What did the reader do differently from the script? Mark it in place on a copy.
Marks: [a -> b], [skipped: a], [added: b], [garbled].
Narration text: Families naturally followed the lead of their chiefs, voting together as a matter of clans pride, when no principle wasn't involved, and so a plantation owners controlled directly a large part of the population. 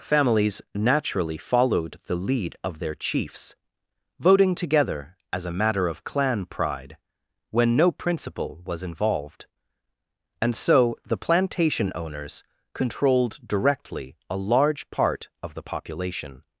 Families naturally followed the lead of their chiefs, voting together as a matter of [clans -> clan] pride, when no principle [wasn't -> was] involved, and so [a -> the] plantation owners controlled directly a large part of the population.